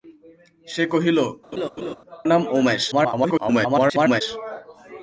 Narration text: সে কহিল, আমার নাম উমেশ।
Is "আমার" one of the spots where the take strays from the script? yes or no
yes